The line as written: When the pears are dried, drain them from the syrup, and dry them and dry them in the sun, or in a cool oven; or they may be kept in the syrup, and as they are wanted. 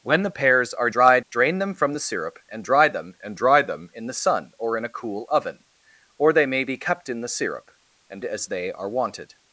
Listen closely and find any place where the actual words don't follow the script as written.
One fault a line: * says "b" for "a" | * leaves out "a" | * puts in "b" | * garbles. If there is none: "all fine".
all fine